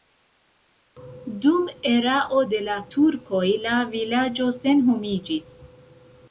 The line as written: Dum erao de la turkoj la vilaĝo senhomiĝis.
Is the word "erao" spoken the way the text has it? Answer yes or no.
yes